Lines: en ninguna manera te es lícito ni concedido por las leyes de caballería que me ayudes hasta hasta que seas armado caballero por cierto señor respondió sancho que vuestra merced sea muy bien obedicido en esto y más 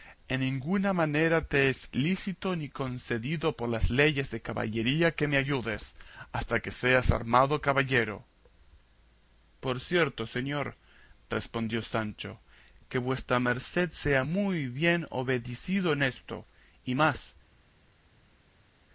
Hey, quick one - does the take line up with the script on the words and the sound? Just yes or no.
no